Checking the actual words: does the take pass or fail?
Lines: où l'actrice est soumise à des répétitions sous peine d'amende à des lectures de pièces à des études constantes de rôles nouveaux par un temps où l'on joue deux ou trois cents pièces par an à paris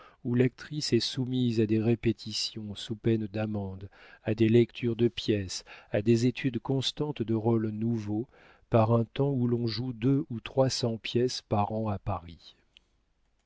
pass